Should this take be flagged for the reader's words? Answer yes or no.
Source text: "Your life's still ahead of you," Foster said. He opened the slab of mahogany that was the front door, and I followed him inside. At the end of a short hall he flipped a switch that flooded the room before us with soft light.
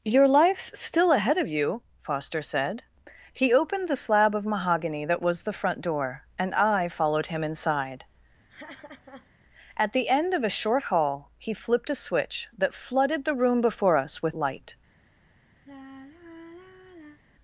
yes